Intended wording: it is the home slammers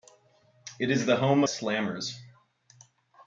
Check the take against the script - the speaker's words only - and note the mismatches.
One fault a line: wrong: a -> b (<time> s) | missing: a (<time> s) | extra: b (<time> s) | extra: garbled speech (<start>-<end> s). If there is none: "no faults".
no faults